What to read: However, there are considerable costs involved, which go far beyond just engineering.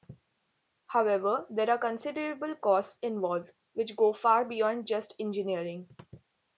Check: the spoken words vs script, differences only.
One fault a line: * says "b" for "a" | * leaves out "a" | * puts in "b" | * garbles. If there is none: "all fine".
all fine